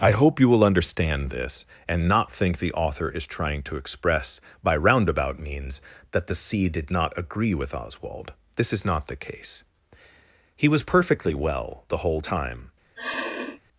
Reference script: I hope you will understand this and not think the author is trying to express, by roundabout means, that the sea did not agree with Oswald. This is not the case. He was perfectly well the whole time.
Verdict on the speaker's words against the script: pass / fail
pass